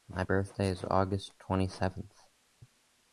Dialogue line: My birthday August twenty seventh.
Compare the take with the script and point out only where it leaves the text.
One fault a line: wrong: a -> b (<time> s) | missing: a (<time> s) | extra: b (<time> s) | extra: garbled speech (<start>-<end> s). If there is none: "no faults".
extra: is (0.7 s)